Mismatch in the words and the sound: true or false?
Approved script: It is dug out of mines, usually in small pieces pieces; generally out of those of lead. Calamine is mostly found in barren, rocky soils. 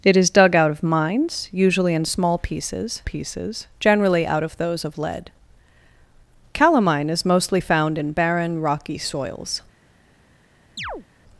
true